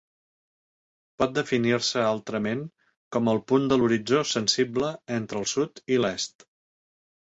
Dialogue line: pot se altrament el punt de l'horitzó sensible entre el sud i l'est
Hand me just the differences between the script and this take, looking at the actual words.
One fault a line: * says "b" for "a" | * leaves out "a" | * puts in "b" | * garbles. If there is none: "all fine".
* puts in "definir"
* puts in "com"